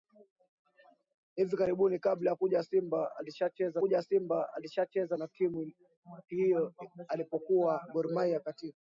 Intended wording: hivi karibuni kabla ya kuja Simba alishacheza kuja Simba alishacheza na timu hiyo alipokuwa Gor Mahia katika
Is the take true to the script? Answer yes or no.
yes